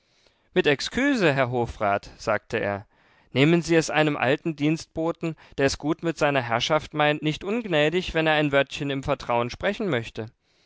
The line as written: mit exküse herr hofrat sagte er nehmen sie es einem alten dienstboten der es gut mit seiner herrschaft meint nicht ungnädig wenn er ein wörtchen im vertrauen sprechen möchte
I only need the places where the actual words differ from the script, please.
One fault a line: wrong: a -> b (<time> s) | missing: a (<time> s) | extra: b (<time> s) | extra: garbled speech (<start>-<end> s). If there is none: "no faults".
no faults